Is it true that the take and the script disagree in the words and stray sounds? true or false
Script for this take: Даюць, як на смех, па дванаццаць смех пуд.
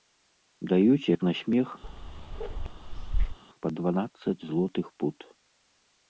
true